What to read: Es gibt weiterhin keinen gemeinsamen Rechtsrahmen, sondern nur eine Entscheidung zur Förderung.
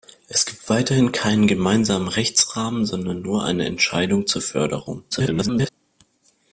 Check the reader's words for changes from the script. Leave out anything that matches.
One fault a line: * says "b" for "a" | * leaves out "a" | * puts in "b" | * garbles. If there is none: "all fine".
* garbles